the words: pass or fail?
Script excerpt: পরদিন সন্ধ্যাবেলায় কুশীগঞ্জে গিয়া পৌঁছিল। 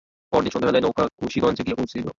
fail